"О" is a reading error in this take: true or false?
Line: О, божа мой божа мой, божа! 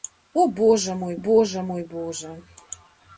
false